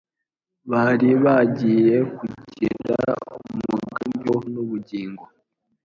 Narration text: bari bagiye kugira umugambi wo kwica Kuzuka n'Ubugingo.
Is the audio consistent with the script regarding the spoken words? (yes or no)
no